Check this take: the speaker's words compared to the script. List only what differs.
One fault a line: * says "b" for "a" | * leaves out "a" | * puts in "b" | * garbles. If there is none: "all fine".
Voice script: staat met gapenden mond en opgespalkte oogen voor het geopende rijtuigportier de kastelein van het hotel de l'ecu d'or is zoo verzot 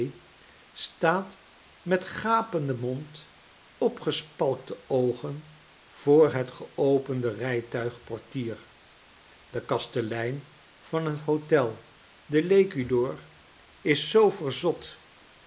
* leaves out "en"